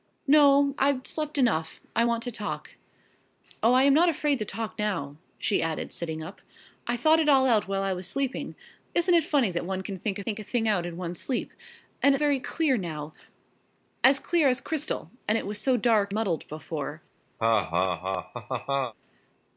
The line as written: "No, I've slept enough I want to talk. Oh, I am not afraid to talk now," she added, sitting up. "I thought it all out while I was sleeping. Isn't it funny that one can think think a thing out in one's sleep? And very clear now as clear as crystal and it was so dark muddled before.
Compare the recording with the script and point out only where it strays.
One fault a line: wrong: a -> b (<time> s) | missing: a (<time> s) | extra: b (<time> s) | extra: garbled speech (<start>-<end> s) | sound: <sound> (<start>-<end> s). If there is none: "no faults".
sound: laugh (17.4-18.9 s)